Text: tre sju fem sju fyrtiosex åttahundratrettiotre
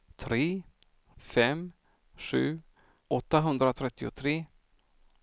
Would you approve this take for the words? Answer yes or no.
no